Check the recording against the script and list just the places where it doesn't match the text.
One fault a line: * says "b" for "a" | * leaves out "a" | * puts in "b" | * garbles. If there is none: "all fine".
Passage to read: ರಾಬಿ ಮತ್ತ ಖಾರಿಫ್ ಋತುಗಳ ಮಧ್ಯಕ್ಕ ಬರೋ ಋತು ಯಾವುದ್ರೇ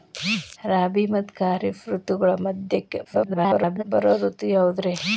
* garbles